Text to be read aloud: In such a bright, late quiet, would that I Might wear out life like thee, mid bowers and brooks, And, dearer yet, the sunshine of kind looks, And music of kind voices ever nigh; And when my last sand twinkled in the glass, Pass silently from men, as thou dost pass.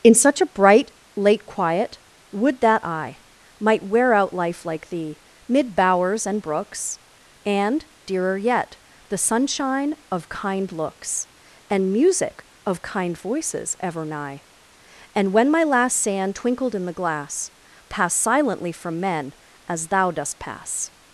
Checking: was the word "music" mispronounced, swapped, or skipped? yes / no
no